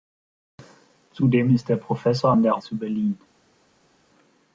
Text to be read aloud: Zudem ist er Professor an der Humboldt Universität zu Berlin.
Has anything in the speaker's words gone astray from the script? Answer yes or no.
yes